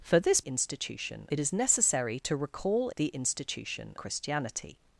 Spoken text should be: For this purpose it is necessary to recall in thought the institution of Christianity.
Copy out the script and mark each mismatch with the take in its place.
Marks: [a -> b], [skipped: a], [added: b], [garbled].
For this [purpose -> institution] it is necessary to recall [skipped: in thought] the institution [skipped: of] Christianity.